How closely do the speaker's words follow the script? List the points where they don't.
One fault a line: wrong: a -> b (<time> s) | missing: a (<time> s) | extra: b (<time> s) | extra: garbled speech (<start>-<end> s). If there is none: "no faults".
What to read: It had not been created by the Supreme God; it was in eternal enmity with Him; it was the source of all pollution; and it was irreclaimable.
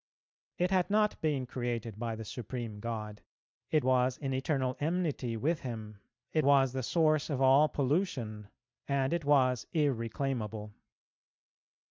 no faults